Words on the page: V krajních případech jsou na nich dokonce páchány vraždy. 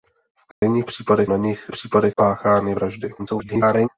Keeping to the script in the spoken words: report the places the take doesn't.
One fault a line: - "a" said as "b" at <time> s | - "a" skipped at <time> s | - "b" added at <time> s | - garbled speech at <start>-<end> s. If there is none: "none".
- "jsou" skipped at 1.3 s
- "dokonce" said as "případech" at 1.7 s
- garbled speech at 3.2-3.9 s